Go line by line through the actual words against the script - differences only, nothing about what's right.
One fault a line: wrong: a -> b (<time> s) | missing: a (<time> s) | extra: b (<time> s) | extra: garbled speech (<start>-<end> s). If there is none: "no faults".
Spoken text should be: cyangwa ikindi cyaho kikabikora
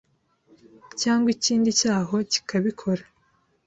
no faults